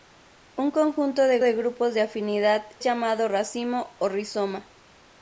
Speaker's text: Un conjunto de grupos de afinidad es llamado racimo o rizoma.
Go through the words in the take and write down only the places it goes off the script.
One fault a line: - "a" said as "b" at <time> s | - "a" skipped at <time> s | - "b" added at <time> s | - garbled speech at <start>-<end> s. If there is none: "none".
- "de" added at 1.4 s
- "es" skipped at 2.7 s